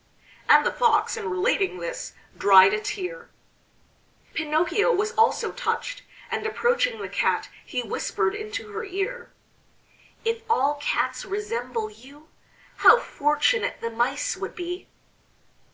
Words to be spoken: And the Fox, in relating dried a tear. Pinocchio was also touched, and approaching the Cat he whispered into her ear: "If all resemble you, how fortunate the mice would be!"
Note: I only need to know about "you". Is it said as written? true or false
true